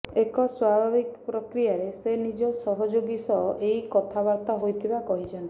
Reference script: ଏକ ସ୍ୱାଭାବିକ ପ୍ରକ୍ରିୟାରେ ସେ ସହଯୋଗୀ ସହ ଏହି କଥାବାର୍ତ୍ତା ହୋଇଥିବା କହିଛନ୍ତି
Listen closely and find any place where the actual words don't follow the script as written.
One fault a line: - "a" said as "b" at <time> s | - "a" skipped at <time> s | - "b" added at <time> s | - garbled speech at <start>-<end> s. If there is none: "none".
- "ନିଜ" added at 2.2 s